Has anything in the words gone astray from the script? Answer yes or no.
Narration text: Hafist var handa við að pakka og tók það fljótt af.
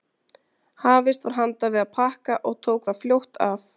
no